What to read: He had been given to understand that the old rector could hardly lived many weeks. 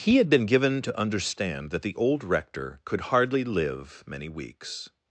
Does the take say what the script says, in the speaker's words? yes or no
no